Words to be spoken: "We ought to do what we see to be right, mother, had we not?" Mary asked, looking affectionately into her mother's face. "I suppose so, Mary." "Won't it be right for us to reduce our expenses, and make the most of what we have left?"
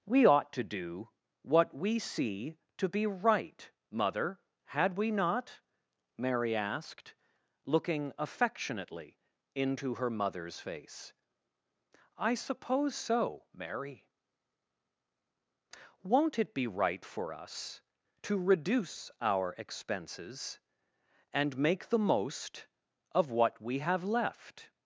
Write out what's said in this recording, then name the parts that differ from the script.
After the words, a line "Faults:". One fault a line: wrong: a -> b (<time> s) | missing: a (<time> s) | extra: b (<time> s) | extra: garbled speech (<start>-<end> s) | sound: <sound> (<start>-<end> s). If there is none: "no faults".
"We ought to do what we see to be right, mother, had we not?" Mary asked, looking affectionately into her mother's face. "I suppose so, Mary." "Won't it be right for us to reduce our expenses, and make the most of what we have left?"
Faults:
no faults